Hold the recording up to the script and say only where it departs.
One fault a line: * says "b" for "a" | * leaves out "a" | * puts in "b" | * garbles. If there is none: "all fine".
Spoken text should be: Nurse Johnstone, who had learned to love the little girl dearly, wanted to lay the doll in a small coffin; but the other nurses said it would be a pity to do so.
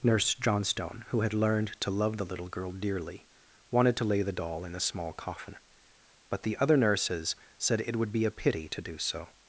all fine